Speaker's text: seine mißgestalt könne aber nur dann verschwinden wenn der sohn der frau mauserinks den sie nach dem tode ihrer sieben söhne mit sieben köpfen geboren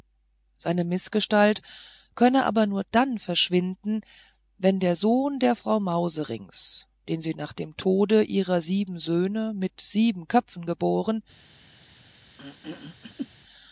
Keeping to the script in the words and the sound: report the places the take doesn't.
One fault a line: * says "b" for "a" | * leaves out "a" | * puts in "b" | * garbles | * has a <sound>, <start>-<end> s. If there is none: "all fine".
* has a throat clearing, 12.4-13.3 s